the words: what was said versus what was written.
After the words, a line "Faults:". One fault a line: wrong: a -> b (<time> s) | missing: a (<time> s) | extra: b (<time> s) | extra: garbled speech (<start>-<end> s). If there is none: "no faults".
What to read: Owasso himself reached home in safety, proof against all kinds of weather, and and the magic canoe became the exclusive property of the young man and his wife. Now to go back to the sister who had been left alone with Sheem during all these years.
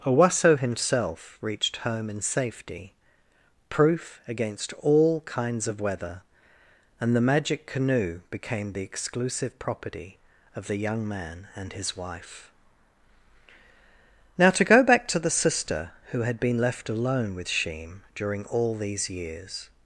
Owasso himself reached home in safety, proof against all kinds of weather, and the magic canoe became the exclusive property of the young man and his wife. Now to go back to the sister who had been left alone with Sheem during all these years.
Faults:
missing: and (7.2 s)